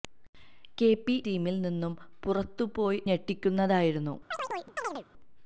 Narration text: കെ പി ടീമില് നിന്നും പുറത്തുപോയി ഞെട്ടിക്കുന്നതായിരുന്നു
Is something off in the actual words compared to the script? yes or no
no